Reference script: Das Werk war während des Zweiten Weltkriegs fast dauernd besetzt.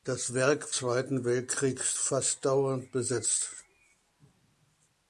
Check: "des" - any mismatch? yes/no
yes